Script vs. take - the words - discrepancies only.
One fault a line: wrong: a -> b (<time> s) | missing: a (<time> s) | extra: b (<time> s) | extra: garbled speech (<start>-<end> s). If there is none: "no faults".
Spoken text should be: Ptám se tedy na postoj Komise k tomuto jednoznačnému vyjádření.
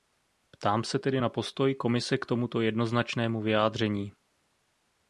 no faults